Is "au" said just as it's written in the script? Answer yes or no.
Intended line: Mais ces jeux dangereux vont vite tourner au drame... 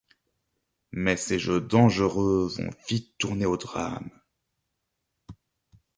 yes